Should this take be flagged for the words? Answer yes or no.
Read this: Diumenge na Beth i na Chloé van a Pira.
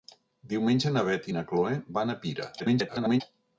yes